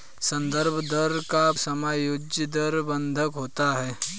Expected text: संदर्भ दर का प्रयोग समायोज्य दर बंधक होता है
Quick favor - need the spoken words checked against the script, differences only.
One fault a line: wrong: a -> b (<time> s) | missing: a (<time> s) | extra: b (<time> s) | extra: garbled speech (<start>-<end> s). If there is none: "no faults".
missing: प्रयोग (1.4 s)